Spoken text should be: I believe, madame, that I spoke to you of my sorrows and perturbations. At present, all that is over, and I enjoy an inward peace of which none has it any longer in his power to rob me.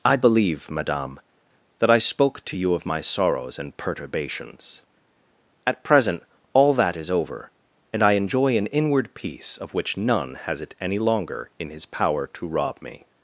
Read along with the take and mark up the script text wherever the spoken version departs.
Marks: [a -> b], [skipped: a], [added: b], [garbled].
I believe, madame, that I spoke to you of my sorrows and perturbations. At present, all that is over, and I enjoy an inward peace of which none has it any longer in his power to rob me.